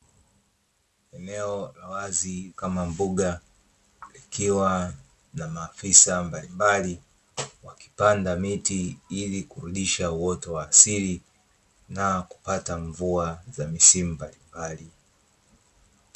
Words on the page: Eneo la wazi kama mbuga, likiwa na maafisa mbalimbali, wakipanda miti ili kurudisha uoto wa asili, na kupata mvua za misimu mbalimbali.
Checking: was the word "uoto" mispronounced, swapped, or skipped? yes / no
no